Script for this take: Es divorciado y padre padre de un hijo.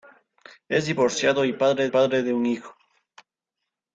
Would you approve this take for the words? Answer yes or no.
yes